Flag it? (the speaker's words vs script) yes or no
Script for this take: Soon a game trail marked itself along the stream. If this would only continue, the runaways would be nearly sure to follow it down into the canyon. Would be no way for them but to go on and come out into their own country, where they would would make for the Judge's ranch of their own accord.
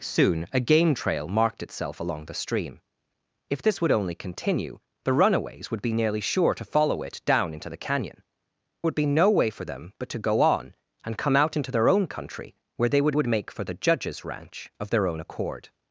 no